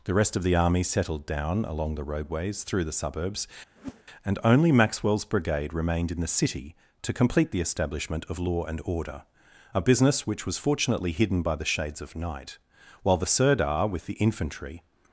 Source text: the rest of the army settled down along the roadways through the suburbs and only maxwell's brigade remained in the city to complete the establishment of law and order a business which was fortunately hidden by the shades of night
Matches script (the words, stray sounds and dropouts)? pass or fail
fail